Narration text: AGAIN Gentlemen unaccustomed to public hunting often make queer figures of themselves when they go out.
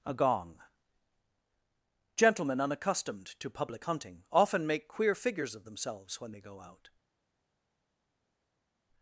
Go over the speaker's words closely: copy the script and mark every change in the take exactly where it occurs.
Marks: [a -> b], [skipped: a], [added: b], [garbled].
[AGAIN -> A gong] Gentlemen unaccustomed to public hunting often make queer figures of themselves when they go out.